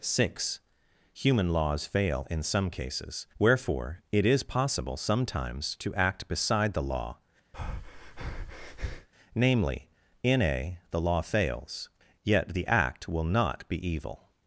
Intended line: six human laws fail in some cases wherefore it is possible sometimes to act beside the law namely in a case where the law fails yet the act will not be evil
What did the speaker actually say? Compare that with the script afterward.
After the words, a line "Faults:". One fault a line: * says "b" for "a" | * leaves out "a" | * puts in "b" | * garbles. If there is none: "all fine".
six human laws fail in some cases wherefore it is possible sometimes to act beside the law namely in a the law fails yet the act will not be evil
Faults:
* leaves out "case where"